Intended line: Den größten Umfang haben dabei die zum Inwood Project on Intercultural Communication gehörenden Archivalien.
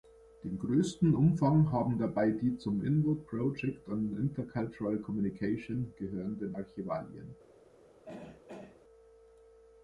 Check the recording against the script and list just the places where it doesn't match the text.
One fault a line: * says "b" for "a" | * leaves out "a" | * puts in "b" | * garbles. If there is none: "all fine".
all fine